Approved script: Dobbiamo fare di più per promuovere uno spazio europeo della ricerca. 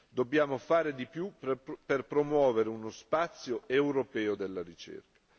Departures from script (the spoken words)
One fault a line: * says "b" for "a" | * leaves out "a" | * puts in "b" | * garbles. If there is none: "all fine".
all fine